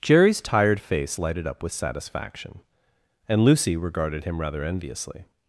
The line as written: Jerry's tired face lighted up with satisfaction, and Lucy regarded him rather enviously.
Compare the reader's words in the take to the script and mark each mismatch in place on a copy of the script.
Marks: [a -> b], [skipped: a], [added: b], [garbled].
Jerry's tired face lighted up with satisfaction, and Lucy regarded him rather enviously.